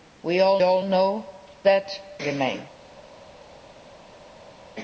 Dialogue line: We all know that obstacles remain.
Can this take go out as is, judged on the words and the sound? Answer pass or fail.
fail